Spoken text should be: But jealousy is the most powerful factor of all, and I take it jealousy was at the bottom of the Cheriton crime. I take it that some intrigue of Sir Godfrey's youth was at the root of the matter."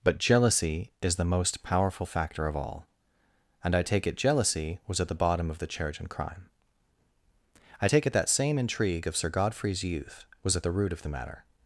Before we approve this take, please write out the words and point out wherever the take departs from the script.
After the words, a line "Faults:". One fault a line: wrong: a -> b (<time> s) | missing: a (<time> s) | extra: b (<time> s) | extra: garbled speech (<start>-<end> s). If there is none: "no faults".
But jealousy is the most powerful factor of all, and I take it jealousy was at the bottom of the Cheriton crime. I take it that same intrigue of Sir Godfrey's youth was at the root of the matter."
Faults:
wrong: some -> same (8.3 s)